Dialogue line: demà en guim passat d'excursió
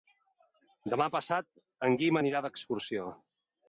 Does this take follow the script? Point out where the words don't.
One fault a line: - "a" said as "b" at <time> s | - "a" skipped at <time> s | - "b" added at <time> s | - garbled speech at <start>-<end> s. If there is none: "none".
- "passat" added at 1.2 s
- "passat" said as "anirà" at 2.2 s